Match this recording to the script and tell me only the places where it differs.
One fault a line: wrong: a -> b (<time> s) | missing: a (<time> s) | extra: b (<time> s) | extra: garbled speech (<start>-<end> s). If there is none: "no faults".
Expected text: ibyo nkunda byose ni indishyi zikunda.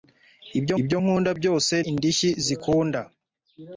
extra: ibyo (0.8 s)
missing: ni (1.7 s)